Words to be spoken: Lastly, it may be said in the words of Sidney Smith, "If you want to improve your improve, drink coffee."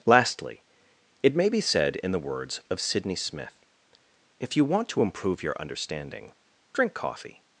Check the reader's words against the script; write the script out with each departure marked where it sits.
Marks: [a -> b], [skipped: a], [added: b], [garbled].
Lastly, it may be said in the words of Sidney Smith, "If you want to improve your [improve, -> understanding] drink coffee."